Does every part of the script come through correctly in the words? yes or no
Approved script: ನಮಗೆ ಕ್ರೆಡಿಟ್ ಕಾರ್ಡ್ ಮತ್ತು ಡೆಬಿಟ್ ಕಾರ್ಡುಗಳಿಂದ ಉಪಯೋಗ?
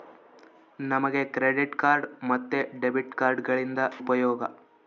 yes